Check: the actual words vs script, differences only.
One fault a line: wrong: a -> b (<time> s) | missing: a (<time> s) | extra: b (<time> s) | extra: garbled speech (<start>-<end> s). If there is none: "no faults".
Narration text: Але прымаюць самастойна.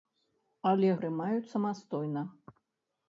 no faults